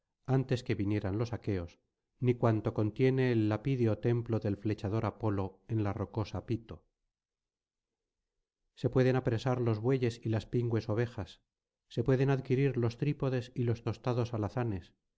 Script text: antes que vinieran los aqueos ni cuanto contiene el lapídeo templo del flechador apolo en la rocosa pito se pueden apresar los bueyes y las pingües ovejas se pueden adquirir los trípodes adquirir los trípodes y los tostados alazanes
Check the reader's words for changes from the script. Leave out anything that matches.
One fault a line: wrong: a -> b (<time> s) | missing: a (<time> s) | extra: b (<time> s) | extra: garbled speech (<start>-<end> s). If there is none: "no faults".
missing: adquirir los trípodes (13.5 s)